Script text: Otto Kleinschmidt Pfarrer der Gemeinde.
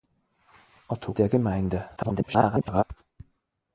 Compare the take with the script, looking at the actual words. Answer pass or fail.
fail